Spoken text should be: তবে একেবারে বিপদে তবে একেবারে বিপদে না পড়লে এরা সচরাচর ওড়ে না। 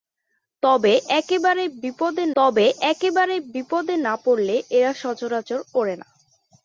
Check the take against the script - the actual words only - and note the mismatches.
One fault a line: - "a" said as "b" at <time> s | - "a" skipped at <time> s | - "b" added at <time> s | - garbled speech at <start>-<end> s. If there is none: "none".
none